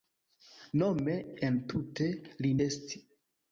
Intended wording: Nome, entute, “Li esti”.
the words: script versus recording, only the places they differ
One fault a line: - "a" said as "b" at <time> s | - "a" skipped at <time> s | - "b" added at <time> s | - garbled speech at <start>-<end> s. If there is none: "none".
none